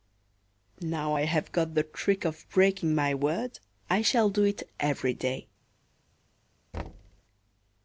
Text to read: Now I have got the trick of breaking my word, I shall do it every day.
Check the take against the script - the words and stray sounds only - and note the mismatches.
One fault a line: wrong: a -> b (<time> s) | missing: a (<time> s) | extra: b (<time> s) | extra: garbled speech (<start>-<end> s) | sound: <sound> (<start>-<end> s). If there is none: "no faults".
sound: thud (6.7-7.2 s)